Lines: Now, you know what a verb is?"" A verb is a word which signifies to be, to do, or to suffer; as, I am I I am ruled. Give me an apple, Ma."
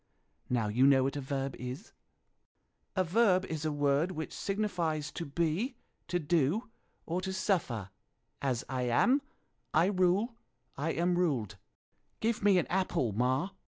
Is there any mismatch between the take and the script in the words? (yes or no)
yes